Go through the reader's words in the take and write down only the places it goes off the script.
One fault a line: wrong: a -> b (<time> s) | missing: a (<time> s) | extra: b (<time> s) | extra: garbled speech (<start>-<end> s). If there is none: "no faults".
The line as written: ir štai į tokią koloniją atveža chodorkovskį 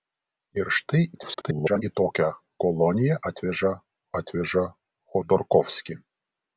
extra: garbled speech (1.1-1.8 s)
extra: atveža (4.2 s)